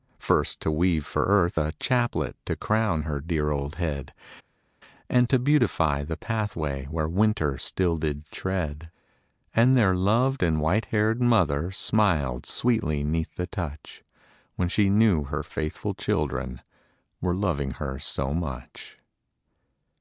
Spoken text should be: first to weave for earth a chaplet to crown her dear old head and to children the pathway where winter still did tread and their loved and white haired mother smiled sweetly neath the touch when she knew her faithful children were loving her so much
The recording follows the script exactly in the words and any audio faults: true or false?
false